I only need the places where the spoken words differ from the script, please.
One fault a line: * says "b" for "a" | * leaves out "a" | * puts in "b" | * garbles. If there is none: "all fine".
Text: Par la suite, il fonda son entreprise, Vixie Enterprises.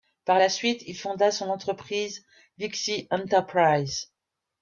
all fine